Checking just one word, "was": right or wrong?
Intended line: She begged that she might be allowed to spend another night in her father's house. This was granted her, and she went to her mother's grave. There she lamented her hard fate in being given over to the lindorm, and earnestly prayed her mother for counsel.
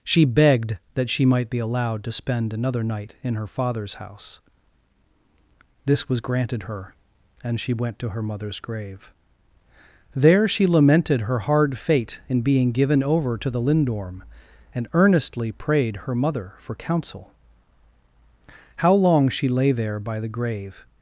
right